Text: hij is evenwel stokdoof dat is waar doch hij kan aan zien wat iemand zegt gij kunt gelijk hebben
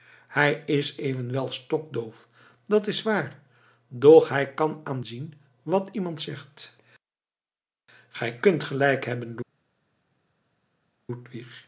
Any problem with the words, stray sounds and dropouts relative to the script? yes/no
no